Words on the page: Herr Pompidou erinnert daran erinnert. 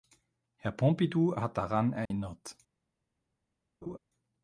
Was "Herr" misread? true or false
false